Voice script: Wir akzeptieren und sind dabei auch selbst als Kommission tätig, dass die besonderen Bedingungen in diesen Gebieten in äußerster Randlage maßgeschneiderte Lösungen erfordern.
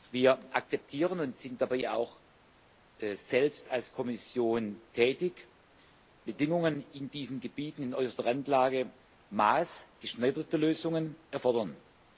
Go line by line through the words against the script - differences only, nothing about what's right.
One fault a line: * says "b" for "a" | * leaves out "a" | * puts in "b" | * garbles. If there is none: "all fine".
* leaves out "dass die besonderen"